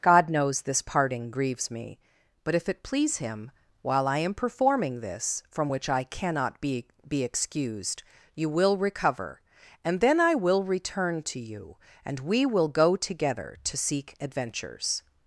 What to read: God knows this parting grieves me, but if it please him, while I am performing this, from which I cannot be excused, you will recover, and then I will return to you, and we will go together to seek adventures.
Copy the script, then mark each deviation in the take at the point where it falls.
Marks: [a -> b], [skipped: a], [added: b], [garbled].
God knows this parting grieves me, but if it please him, while I am performing this, from which I cannot be [added: be] excused, you will recover, and then I will return to you, and we will go together to seek adventures.